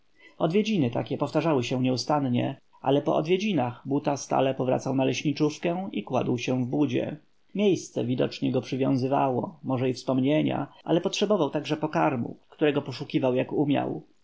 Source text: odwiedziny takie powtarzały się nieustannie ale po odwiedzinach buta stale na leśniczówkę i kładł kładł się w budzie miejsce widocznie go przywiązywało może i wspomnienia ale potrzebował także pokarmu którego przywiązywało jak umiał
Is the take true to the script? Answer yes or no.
no